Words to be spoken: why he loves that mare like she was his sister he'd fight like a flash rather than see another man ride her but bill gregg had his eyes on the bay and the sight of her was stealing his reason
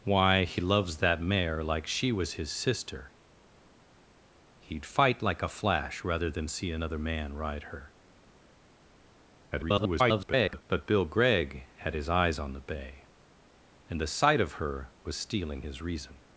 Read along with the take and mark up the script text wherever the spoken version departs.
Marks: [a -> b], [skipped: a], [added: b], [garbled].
why he loves that mare like she was his sister he'd fight like a flash rather than see another man ride her [garbled] but bill gregg had his eyes on the bay and the sight of her was stealing his reason